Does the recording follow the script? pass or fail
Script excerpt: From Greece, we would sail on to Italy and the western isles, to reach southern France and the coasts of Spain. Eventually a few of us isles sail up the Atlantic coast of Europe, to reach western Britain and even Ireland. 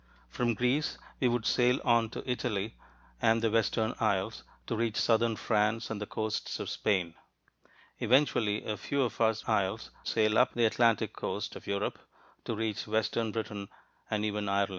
pass